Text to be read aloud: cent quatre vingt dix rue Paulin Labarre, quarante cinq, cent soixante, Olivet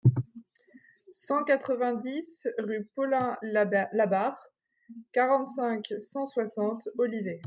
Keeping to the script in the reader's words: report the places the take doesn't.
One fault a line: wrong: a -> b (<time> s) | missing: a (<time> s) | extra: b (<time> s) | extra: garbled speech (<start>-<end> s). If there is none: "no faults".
no faults